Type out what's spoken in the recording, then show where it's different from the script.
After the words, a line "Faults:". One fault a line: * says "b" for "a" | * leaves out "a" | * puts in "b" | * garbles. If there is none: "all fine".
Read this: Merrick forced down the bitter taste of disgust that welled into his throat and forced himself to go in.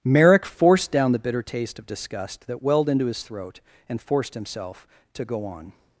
Merrick forced down the bitter taste of disgust that welled into his throat and forced himself to go on.
Faults:
* says "on" for "in"